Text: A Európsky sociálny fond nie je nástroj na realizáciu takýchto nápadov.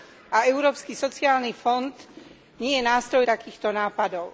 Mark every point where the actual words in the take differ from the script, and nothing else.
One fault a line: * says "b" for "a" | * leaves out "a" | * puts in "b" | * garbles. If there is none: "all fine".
* leaves out "na realizáciu"